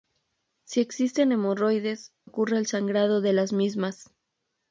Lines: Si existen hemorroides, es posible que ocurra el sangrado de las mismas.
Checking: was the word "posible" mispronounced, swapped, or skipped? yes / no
yes